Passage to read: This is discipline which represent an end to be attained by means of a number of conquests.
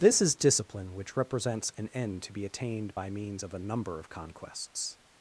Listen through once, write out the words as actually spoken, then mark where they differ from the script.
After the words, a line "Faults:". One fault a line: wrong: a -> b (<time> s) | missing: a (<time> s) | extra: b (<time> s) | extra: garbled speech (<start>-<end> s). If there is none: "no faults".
This is discipline which represents an end to be attained by means of a number of conquests.
Faults:
wrong: represent -> represents (1.2 s)